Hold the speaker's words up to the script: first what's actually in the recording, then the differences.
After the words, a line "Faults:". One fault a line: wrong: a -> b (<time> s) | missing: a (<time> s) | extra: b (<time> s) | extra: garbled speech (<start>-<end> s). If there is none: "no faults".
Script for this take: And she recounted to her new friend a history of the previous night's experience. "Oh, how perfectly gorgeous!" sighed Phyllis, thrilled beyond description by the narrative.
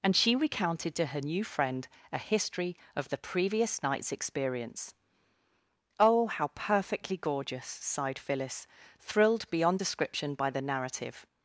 And she recounted to her new friend a history of the previous night's experience. "Oh, how perfectly gorgeous!" sighed Phyllis, thrilled beyond description by the narrative.
Faults:
no faults